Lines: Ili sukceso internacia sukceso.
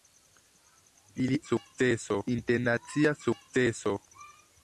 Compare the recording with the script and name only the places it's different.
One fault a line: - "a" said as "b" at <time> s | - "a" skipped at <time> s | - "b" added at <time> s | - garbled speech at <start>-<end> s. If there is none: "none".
none